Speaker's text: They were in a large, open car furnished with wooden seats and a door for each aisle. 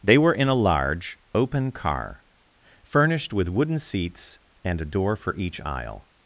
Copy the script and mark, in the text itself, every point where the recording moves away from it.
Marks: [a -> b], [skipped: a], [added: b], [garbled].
They were in a large, open car furnished with wooden seats and a door for each aisle.